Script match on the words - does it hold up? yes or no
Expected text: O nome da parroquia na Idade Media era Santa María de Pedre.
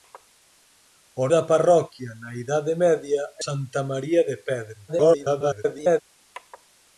no